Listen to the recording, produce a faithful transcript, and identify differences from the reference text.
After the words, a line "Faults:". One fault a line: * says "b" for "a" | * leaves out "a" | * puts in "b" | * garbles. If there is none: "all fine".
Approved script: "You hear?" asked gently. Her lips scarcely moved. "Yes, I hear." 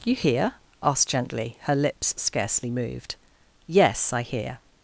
"You hear?" asked gently. Her lips scarcely moved. "Yes, I hear."
Faults:
all fine